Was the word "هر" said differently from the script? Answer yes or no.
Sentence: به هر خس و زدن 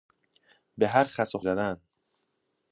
no